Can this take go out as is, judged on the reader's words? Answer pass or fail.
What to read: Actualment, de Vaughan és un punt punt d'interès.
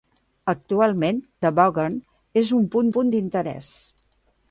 pass